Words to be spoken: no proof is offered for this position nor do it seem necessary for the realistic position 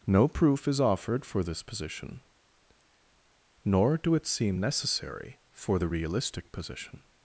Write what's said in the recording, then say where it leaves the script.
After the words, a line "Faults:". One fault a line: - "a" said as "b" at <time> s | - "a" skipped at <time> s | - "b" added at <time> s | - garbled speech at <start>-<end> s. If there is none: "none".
no proof is offered for this position nor do it seem necessary for the realistic position
Faults:
none